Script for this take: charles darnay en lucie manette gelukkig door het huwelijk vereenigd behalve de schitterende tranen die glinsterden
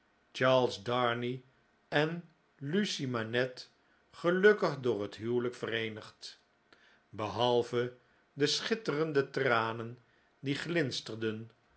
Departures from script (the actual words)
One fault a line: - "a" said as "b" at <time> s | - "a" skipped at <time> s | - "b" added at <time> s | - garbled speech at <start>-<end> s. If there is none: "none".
none